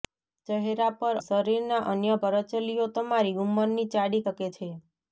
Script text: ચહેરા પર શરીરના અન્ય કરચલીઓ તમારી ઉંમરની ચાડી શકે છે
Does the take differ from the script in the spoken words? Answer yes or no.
no